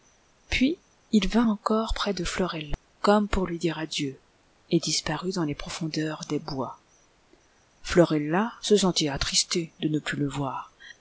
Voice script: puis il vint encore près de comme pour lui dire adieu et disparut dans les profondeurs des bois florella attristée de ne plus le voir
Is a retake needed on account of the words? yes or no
yes